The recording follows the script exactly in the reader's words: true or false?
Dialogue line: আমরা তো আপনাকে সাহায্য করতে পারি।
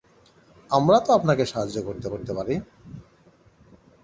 false